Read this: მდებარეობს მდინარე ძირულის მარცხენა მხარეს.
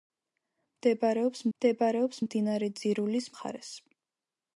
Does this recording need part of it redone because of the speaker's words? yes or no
yes